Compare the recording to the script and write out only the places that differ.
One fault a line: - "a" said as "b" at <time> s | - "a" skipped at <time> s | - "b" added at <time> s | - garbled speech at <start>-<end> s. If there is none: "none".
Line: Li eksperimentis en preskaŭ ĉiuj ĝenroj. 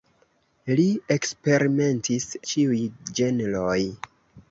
- "en preskaŭ" skipped at 2.2 s